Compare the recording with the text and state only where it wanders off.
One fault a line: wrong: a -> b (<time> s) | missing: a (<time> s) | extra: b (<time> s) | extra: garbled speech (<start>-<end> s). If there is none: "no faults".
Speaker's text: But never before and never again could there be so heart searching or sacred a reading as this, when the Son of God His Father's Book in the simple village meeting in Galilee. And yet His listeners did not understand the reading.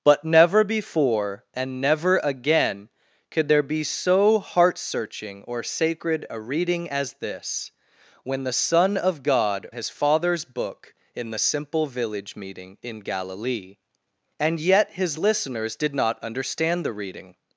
no faults